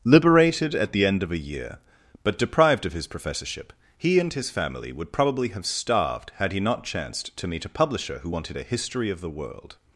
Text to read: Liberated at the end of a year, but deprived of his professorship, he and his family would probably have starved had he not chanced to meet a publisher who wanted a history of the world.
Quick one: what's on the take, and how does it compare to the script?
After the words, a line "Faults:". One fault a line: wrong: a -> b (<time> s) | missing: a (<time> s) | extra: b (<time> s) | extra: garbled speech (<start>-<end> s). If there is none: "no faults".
Liberated at the end of a year, but deprived of his professorship, he and his family would probably have starved had he not chanced to meet a publisher who wanted a history of the world.
Faults:
no faults